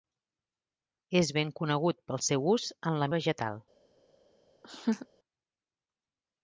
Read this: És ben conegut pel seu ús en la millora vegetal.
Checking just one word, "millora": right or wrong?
wrong